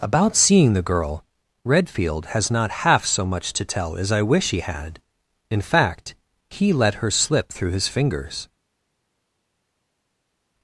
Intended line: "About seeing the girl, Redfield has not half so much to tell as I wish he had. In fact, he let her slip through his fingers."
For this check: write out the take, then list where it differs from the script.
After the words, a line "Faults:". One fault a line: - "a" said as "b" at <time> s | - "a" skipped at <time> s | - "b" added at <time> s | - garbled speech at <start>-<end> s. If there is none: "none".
"About seeing the girl, Redfield has not half so much to tell as I wish he had. In fact, he let her slip through his fingers."
Faults:
none